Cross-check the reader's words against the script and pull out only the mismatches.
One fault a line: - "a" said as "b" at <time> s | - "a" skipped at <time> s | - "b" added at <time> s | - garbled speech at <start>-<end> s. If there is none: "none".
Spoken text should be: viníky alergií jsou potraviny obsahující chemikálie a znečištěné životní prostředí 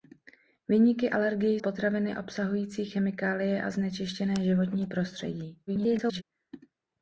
- "jsou" skipped at 1.6 s
- garbled speech at 5.7-6.2 s